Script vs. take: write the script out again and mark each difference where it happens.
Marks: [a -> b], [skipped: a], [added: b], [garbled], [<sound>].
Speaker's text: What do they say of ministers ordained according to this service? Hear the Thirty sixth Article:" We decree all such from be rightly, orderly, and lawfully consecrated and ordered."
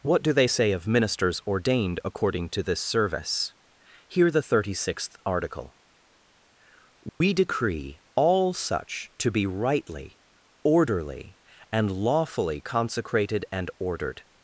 What do they say of ministers ordained according to this service? Hear the Thirty sixth Article:" We [dropout] decree all such [from -> to] be rightly, orderly, and lawfully consecrated and ordered."